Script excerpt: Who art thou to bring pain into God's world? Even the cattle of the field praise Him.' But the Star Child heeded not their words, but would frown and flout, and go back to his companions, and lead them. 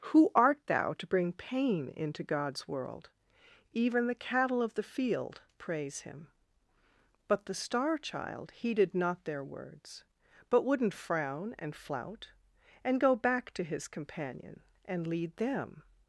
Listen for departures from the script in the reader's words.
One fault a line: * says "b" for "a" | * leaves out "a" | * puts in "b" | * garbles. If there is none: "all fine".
* says "wouldn't" for "would"
* says "companion" for "companions"